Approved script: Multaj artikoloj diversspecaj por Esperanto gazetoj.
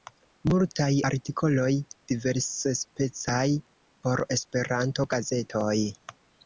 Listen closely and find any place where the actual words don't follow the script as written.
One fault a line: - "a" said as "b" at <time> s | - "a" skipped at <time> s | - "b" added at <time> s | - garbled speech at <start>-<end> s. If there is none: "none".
none